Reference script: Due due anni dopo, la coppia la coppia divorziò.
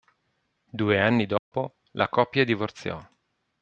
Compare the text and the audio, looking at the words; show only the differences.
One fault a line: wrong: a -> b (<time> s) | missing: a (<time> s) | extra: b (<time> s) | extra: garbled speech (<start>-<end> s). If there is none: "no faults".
missing: due (1.0 s)
missing: la coppia (2.4 s)